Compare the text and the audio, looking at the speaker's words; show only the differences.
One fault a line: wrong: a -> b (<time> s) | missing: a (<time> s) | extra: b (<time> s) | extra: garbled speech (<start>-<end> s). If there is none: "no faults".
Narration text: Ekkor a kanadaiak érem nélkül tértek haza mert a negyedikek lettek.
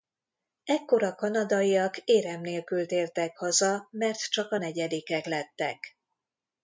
extra: csak (4.3 s)